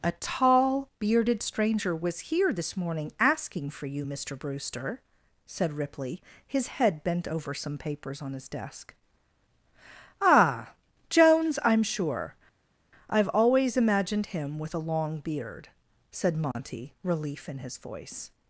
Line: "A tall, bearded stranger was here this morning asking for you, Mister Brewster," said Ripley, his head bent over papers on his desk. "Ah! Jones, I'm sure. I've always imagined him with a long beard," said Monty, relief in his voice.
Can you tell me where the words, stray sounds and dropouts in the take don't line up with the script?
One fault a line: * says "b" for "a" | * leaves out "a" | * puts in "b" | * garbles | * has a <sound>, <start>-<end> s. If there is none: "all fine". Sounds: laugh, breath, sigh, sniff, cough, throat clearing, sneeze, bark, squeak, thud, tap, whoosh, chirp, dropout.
* puts in "some"